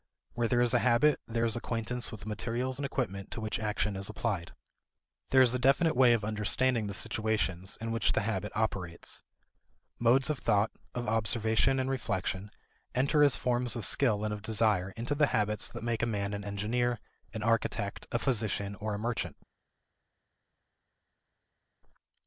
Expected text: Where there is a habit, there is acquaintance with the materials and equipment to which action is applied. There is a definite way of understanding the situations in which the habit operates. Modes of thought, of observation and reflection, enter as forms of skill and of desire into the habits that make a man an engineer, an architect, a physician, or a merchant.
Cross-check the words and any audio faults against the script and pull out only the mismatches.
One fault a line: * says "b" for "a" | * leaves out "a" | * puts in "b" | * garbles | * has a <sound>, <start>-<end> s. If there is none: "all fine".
all fine